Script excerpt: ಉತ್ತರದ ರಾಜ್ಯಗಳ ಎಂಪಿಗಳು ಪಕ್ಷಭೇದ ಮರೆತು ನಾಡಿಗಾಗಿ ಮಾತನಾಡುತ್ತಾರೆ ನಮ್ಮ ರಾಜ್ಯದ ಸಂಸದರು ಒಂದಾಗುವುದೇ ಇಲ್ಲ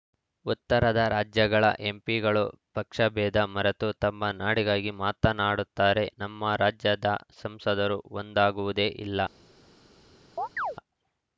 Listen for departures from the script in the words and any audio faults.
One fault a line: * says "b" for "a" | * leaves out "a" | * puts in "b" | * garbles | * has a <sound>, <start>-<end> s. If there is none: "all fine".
* puts in "ತಮ್ಮ"
* has a chirp, 10.4-10.8 s